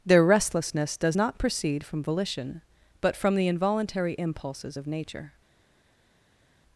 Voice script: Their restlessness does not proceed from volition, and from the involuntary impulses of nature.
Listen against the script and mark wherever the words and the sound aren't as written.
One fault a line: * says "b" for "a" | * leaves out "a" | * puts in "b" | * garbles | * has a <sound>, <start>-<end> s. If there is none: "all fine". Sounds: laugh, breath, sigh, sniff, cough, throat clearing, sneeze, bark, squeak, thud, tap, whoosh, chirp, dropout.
* says "but" for "and"